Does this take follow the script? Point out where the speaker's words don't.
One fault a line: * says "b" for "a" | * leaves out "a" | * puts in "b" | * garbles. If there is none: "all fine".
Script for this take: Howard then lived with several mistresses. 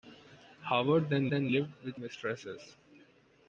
* puts in "then"
* leaves out "several"